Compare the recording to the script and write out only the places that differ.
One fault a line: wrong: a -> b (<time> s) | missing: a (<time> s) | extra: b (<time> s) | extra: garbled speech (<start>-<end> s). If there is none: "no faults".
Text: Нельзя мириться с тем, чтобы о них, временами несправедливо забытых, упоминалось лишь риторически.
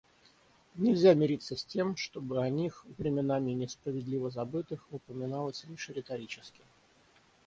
no faults